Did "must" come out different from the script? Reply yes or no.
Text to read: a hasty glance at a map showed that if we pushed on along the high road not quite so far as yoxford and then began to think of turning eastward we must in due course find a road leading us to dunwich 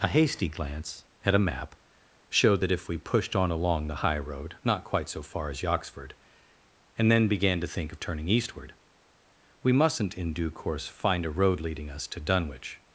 yes